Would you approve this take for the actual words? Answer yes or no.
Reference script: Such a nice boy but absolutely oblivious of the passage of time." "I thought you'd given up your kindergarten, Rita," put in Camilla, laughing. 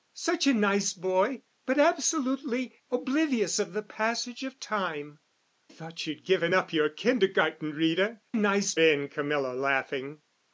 no